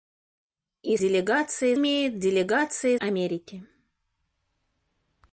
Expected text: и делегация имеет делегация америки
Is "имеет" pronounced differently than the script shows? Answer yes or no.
no